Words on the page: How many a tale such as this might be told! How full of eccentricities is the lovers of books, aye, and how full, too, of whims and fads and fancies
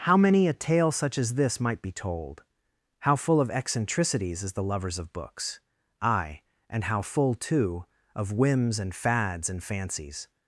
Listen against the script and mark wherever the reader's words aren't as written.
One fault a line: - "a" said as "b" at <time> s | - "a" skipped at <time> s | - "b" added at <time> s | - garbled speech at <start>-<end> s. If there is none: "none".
none